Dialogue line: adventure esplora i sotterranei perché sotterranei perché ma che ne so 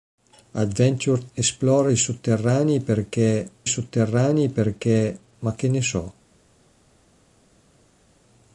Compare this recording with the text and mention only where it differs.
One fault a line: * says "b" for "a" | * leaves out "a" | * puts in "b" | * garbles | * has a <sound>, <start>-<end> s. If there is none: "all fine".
all fine